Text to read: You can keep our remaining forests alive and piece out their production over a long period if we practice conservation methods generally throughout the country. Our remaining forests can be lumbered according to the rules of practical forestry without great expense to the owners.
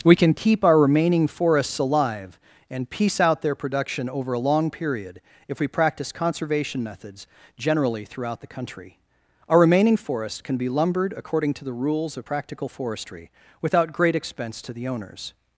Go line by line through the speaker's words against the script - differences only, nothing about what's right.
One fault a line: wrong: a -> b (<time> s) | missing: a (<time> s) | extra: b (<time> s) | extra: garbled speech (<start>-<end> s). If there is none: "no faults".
wrong: You -> We (0.0 s)